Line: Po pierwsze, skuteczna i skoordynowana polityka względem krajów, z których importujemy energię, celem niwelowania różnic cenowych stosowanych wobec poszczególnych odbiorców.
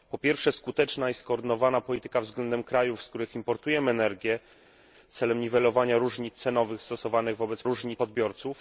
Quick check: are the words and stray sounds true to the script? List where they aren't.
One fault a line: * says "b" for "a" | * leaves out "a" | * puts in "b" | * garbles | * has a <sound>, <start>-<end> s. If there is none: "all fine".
* says "różnic" for "poszczególnych"